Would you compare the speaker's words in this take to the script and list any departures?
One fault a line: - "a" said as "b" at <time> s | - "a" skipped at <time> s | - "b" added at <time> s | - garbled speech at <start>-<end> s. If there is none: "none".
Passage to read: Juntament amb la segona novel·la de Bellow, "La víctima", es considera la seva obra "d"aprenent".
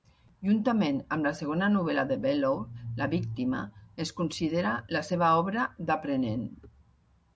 none